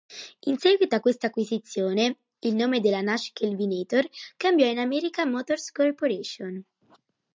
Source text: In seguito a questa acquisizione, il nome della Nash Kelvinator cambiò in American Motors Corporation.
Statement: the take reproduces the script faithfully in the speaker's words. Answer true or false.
true